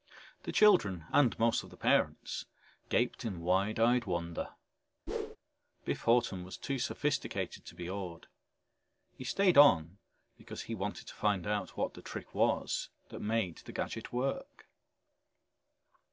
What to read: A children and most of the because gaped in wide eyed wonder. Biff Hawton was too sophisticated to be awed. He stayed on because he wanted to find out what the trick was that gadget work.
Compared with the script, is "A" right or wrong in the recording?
wrong